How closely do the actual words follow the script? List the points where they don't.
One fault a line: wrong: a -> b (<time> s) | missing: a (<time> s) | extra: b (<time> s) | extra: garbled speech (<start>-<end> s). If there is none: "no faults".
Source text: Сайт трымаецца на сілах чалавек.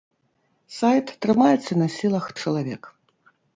no faults